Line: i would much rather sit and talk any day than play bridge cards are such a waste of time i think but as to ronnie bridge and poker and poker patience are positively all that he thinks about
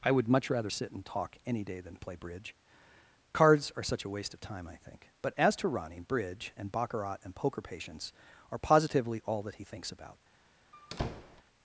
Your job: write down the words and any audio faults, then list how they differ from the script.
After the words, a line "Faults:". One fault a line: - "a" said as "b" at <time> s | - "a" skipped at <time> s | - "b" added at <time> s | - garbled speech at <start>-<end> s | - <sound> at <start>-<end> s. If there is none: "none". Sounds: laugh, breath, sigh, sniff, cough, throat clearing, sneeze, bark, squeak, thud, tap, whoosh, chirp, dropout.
i would much rather sit and talk any day than play bridge cards are such a waste of time i think but as to ronnie bridge and baccarat and poker patience are positively all that he thinks about
Faults:
- "poker" said as "baccarat" at 6.7 s
- squeak at 10.7-11.4 s